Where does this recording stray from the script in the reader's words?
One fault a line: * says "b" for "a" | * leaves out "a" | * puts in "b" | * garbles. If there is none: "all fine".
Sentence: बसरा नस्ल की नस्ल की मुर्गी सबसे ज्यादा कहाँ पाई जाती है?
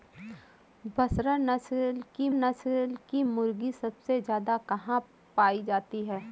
all fine